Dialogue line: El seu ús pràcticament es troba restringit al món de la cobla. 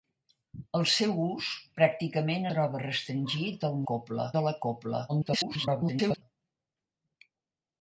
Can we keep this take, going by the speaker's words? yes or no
no